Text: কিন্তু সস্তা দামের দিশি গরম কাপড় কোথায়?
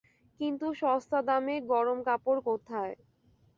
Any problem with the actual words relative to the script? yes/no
yes